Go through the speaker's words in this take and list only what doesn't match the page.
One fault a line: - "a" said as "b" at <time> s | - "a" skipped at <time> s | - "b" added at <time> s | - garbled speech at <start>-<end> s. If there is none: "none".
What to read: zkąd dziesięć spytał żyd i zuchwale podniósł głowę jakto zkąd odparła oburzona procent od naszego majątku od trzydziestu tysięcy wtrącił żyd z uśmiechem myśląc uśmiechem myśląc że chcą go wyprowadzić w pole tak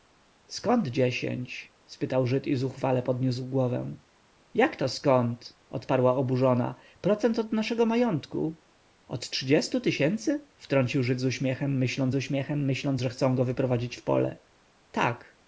none